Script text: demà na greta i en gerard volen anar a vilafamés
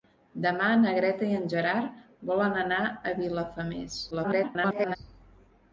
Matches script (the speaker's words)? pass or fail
fail